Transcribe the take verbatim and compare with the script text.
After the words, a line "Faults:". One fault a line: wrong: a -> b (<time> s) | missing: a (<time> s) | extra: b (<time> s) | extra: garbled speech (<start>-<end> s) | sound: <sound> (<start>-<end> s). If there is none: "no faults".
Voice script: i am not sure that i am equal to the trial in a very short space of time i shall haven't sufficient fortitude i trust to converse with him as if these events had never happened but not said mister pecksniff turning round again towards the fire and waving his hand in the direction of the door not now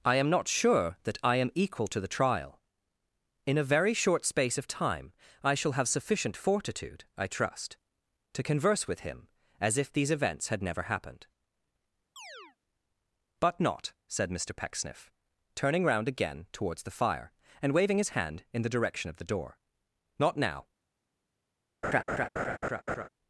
i am not sure that i am equal to the trial in a very short space of time i shall have sufficient fortitude i trust to converse with him as if these events had never happened but not said mister pecksniff turning round again towards the fire and waving his hand in the direction of the door not now
Faults:
wrong: haven't -> have (5.7 s)
sound: chirp (12.2-12.6 s)
sound: laugh (21.8-23.1 s)